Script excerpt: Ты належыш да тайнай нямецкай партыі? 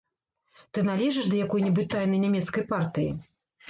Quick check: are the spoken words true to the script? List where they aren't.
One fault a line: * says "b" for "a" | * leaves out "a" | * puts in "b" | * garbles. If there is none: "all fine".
* puts in "якой небудзь"